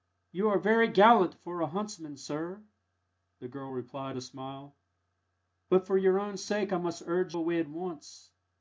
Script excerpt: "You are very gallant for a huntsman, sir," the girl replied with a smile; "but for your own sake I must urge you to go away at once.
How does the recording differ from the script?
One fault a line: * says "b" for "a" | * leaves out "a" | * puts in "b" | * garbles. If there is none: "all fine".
* leaves out "with"
* leaves out "you to go"